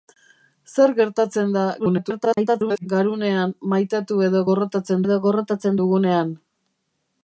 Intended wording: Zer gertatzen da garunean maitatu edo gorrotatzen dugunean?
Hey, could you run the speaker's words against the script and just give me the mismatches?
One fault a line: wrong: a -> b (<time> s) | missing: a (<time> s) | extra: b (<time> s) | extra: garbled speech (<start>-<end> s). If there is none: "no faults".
extra: garbled speech (1.8-2.9 s)
extra: edo gorrotatzen (5.1 s)